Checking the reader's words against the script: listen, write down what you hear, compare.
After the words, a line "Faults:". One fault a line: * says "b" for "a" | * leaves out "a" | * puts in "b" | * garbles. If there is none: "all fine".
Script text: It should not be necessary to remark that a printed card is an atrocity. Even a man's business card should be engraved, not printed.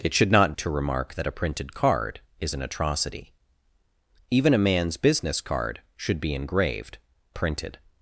It should not to remark that a printed card is an atrocity. Even a man's business card should be engraved, printed.
Faults:
* leaves out "be necessary"
* leaves out "not"